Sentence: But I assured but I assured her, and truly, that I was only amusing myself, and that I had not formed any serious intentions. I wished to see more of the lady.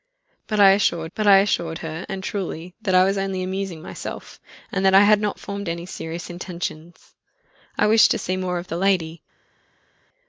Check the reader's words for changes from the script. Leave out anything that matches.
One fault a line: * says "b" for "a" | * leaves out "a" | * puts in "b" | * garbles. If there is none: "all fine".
all fine